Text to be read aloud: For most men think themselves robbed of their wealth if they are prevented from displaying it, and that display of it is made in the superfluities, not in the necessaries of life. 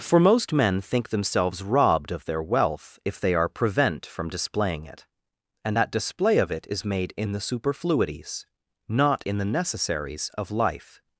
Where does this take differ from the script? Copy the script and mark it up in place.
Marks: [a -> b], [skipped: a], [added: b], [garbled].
For most men think themselves robbed of their wealth if they are [prevented -> prevent] from displaying it, and that display of it is made in the superfluities, not in the necessaries of life.